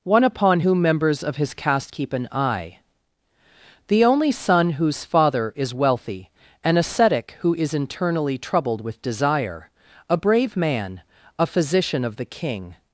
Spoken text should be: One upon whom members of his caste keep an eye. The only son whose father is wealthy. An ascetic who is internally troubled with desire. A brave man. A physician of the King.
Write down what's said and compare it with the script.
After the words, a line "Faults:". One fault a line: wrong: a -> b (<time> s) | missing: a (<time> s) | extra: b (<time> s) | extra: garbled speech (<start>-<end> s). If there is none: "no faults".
One upon whom members of his caste keep an eye. The only son whose father is wealthy. An ascetic who is internally troubled with desire. A brave man. A physician of the King.
Faults:
no faults